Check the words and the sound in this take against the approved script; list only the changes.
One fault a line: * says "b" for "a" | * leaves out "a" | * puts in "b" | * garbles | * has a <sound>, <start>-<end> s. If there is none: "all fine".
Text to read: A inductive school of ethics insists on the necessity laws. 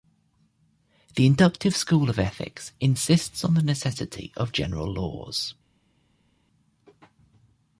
* says "The" for "A"
* puts in "of general"